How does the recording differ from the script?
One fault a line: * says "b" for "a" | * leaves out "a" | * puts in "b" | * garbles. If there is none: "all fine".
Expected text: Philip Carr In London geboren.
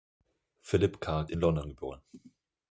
all fine